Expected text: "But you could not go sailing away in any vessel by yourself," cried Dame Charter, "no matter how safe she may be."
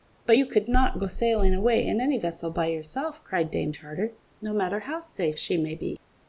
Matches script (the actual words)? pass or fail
pass